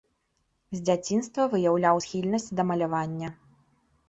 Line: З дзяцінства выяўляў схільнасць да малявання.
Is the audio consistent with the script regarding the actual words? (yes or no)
yes